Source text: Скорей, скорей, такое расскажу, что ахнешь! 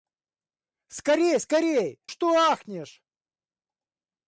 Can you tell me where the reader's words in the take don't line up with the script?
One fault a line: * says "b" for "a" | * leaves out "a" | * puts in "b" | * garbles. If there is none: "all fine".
* leaves out "такое расскажу"